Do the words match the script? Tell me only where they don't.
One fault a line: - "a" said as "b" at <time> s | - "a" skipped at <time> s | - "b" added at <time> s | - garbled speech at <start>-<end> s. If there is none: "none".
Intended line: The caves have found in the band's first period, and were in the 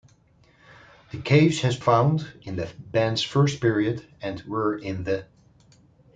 none